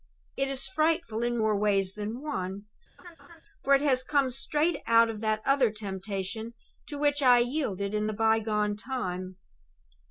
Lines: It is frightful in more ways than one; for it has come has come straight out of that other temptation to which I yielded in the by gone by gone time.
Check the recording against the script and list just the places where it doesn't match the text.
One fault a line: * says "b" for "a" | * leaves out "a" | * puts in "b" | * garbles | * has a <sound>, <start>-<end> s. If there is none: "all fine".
* has a laugh, 3.0-3.4 s
* leaves out "has come"
* leaves out "by gone"